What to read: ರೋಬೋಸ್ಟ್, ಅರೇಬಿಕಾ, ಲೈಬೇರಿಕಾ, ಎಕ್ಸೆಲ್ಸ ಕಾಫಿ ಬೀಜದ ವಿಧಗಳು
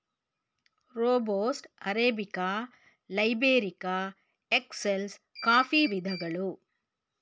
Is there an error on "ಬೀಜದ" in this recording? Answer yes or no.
yes